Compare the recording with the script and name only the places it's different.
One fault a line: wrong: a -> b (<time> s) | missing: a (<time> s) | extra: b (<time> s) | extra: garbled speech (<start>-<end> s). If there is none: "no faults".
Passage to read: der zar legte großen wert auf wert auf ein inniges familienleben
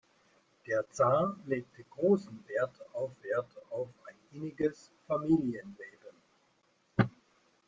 no faults